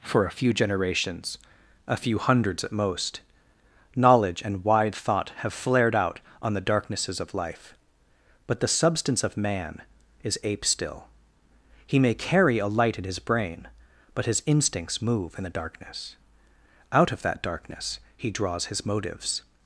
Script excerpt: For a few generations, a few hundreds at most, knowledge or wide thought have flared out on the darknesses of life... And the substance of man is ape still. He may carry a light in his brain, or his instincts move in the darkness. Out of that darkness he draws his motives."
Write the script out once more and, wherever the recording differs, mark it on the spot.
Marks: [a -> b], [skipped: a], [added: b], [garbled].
For a few generations, a few hundreds at most, knowledge [or -> and] wide thought have flared out on the darknesses of life... [And -> But] the substance of man is ape still. He may carry a light in his brain, [or -> but] his instincts move in the darkness. Out of that darkness he draws his motives."